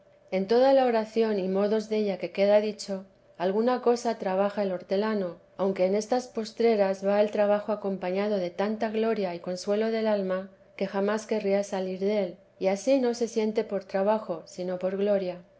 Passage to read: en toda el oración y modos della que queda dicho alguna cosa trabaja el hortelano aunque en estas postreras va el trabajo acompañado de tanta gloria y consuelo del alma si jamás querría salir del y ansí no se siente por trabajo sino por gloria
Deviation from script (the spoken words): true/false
true